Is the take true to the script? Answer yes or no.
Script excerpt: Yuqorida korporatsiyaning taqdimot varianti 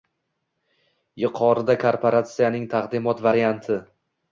yes